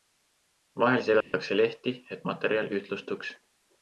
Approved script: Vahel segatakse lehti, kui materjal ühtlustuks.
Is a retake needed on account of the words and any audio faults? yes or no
yes